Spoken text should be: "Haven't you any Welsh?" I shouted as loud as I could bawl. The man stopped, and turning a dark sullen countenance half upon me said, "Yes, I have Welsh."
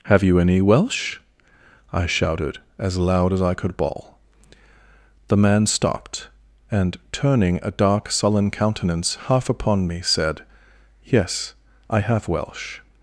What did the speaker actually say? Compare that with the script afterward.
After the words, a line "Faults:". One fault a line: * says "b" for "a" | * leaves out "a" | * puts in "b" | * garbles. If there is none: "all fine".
"Have you any Welsh?" I shouted as loud as I could bawl. The man stopped, and turning a dark sullen countenance half upon me said, "Yes, I have Welsh."
Faults:
* says "Have" for "Haven't"